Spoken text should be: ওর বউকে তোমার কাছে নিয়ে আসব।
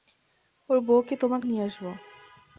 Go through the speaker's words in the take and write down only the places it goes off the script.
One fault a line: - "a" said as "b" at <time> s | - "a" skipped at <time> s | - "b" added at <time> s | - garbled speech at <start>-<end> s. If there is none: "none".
- "কাছে" skipped at 1.4 s